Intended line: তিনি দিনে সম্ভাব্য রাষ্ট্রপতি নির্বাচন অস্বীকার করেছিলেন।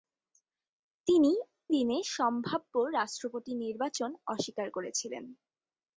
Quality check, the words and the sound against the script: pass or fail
pass